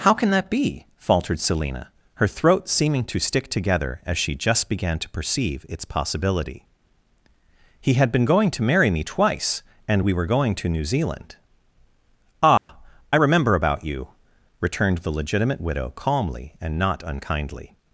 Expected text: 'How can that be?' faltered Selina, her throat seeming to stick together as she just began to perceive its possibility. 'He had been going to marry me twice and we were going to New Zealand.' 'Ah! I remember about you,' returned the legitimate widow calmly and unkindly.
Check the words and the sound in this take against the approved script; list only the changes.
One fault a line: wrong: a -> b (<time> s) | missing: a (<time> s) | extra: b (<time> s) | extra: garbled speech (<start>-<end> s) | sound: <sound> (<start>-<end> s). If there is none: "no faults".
sound: dropout (12.6-12.7 s)
extra: not (16.8 s)